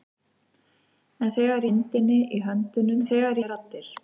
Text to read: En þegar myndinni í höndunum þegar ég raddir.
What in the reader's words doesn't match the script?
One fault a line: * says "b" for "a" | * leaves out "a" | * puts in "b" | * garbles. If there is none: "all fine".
all fine